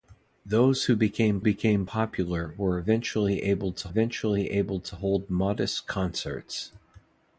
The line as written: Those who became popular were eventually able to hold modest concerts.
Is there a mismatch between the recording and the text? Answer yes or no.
yes